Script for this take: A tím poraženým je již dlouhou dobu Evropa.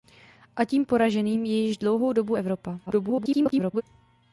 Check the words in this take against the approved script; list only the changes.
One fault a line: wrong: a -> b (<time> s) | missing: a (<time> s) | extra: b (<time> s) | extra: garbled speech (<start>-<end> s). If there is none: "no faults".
extra: garbled speech (2.9-3.8 s)